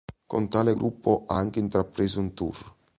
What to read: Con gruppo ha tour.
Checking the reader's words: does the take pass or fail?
fail